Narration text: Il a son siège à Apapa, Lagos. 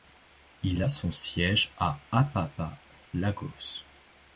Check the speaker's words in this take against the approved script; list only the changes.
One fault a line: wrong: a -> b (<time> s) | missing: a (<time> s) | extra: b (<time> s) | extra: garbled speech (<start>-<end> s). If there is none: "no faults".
no faults